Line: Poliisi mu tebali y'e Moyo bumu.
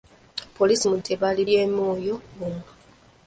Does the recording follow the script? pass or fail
pass